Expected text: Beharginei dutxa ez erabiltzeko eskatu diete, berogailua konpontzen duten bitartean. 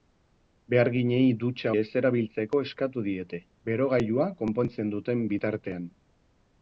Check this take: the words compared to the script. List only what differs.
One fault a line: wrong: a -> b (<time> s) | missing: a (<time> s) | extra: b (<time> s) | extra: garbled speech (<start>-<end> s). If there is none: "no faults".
no faults